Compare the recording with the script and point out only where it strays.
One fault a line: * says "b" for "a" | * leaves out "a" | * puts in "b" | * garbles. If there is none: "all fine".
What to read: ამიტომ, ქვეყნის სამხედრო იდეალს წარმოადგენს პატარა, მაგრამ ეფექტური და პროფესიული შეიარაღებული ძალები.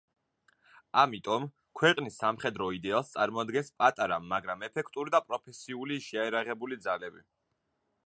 all fine